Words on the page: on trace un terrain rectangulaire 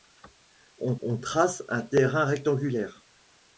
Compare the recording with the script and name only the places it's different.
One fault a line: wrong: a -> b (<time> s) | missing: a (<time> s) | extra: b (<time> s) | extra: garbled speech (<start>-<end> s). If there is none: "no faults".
extra: on (1.0 s)